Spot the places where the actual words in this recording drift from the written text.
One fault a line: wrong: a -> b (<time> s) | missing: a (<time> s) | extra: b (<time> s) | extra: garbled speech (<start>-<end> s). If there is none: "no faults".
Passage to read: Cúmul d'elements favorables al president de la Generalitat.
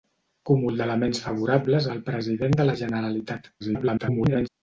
extra: garbled speech (3.6-4.5 s)